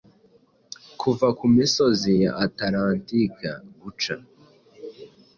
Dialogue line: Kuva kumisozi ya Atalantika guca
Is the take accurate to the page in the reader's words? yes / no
yes